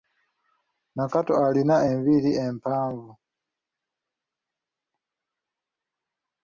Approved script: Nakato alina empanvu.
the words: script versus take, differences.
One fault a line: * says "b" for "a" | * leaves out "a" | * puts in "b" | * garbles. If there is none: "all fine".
* puts in "enviiri"